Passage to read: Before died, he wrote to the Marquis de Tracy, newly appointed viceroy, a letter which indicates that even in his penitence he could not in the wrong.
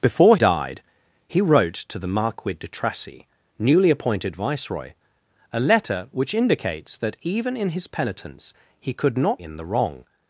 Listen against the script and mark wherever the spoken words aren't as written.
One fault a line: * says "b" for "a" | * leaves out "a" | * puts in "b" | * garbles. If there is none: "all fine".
all fine